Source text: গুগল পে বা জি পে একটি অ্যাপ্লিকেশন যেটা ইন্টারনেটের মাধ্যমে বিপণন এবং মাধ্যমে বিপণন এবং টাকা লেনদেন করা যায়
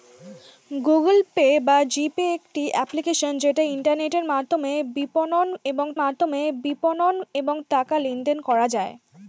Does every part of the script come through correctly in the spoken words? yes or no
yes